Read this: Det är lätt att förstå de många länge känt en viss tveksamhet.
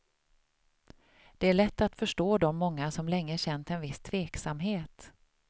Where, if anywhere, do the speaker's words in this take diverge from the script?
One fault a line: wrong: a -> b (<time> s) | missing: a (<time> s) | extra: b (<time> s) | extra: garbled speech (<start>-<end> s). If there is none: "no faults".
extra: som (2.9 s)